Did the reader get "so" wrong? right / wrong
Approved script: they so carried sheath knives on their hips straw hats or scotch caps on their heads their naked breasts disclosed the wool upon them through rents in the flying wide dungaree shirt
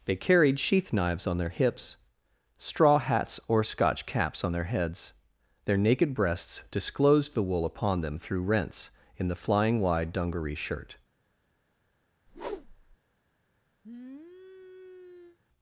wrong